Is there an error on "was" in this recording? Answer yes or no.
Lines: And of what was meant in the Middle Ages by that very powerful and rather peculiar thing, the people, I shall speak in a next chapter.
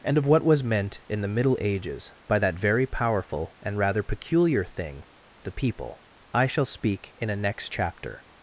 no